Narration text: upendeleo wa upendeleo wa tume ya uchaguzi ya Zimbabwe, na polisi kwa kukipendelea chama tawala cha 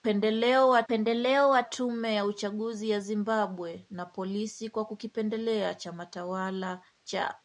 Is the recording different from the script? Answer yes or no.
no